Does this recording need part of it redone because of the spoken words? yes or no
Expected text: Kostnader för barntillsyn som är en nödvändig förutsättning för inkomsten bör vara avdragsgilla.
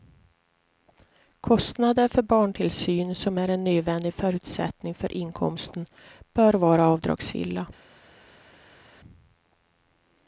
no